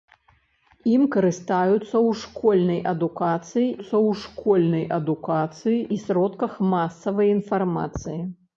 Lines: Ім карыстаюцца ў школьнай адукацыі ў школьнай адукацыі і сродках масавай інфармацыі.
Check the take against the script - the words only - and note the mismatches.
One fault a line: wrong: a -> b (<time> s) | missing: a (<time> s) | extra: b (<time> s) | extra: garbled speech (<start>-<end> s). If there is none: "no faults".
no faults